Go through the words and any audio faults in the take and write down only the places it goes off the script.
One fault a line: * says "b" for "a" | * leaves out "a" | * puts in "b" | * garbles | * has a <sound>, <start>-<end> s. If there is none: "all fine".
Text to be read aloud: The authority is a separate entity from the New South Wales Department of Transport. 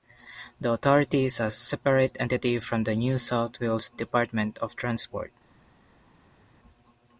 all fine